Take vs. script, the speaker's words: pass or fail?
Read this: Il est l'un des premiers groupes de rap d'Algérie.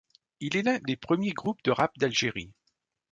pass